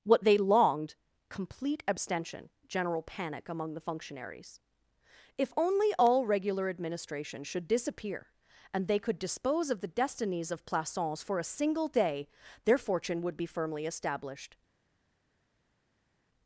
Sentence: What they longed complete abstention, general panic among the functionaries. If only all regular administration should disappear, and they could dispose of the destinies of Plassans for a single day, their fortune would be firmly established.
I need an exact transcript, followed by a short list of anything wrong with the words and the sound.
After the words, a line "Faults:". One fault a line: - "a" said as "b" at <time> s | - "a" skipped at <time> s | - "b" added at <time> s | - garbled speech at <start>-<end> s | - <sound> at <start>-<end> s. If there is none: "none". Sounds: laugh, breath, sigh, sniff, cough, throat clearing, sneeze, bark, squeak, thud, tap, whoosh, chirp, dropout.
What they longed complete abstention, general panic among the functionaries. If only all regular administration should disappear, and they could dispose of the destinies of Plassans for a single day, their fortune would be firmly established.
Faults:
none